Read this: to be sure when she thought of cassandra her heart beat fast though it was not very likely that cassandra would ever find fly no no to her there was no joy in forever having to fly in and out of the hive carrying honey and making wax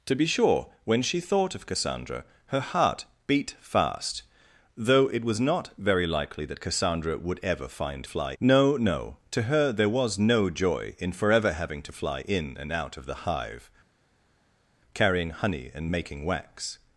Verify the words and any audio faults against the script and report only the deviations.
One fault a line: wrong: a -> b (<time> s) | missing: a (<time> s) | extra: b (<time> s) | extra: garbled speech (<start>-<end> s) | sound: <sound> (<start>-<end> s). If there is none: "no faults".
no faults